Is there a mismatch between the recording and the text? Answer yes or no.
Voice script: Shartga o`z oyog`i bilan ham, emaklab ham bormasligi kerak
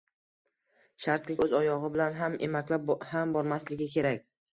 no